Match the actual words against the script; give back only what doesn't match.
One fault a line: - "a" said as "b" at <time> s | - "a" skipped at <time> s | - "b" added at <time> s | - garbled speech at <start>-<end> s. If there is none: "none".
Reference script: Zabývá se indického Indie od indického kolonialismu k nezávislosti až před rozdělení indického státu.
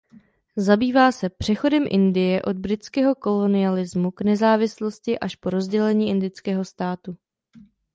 - "indického" said as "přechodem" at 1.3 s
- "indického" said as "britského" at 2.6 s
- "před" said as "po" at 5.3 s